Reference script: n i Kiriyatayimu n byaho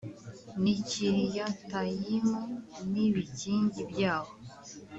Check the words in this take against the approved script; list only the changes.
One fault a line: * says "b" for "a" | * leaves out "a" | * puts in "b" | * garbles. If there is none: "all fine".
* puts in "ibikingi"